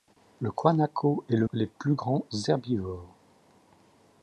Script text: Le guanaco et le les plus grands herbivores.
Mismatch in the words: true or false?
false